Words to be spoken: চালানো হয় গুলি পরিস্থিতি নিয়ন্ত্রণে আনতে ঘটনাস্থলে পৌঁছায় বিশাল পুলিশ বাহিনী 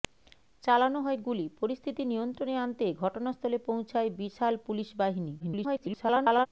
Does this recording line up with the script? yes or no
no